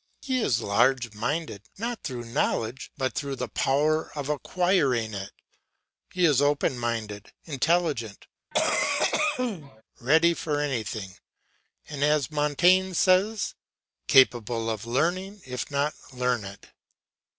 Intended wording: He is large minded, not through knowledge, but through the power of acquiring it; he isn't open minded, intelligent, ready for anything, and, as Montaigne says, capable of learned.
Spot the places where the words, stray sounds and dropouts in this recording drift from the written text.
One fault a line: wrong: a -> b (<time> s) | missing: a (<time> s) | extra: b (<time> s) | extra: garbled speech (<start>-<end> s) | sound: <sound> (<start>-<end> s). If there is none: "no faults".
wrong: isn't -> is (6.2 s)
sound: cough (8.5-9.8 s)
extra: learning if not (14.9 s)